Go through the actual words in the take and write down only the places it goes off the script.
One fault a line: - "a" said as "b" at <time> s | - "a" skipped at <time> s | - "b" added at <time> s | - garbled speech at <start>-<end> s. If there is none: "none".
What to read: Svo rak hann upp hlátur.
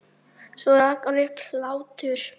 none